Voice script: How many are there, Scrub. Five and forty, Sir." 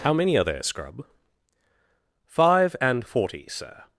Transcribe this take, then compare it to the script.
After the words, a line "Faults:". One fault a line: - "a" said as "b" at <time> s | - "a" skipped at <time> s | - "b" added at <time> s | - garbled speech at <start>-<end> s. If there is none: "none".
How many are there, Scrub. Five and forty, Sir."
Faults:
none